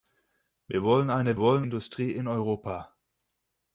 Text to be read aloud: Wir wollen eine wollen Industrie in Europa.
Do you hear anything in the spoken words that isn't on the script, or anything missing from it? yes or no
no